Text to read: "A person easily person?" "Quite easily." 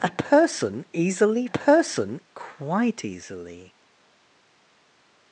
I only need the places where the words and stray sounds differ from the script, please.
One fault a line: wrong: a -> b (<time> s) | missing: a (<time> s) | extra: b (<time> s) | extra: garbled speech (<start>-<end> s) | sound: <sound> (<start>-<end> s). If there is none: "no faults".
no faults